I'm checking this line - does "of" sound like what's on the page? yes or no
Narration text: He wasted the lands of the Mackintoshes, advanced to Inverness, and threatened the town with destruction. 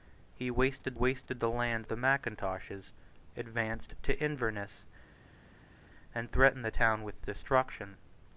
no